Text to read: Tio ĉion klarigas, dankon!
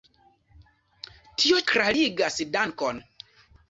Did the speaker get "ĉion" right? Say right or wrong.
wrong